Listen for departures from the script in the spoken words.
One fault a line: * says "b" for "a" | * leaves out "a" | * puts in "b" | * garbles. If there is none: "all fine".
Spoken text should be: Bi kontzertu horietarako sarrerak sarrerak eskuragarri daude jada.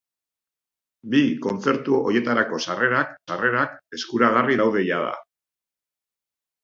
all fine